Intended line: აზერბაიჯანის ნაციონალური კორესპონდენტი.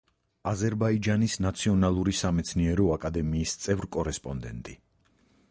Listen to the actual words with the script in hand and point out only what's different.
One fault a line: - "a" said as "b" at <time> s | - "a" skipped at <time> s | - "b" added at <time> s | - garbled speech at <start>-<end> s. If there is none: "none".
- "სამეცნიერო აკადემიის წევრ" added at 2.2 s